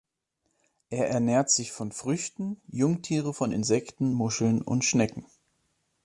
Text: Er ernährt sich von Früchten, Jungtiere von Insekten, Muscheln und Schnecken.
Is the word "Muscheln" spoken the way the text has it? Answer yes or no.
yes